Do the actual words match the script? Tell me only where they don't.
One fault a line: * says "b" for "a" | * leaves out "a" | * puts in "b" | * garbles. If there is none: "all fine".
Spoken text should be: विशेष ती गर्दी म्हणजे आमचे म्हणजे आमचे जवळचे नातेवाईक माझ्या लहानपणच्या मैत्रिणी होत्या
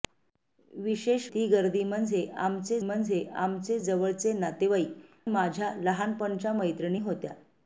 all fine